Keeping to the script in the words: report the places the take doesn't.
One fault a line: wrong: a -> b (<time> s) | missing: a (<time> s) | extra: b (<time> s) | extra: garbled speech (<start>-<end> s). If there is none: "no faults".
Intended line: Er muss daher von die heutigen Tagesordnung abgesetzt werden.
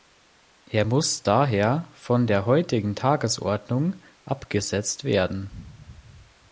wrong: die -> der (2.3 s)